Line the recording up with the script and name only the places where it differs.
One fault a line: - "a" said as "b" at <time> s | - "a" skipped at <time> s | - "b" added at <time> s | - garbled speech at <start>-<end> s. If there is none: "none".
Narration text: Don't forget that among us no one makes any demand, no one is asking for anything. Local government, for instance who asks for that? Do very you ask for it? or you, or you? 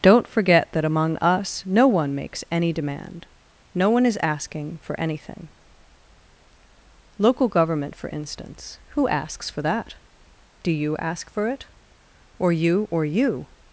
- "very" skipped at 10.7 s